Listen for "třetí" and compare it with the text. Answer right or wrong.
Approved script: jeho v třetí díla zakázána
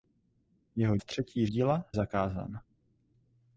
right